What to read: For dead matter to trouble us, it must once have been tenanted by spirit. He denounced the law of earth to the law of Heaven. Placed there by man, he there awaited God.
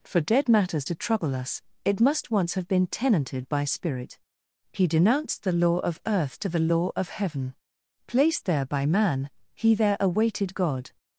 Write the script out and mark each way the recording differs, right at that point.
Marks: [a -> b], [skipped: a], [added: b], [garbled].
For dead [matter -> matters] to trouble us, it must once have been tenanted by spirit. He denounced the law of earth to the law of Heaven. Placed there by man, he there awaited God.